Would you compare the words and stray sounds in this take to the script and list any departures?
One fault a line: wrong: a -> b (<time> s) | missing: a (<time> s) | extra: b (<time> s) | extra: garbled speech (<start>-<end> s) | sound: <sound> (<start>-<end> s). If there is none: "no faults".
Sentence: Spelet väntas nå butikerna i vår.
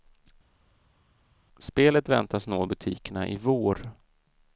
no faults